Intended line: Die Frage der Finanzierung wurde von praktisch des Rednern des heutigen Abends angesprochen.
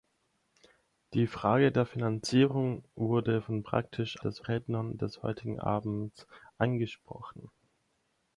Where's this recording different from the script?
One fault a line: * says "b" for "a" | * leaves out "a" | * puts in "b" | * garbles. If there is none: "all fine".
all fine